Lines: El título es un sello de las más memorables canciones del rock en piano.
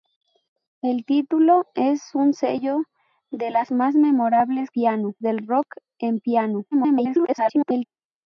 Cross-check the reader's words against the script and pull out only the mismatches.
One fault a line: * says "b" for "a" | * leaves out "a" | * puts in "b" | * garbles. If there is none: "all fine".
* says "piano" for "canciones"
* garbles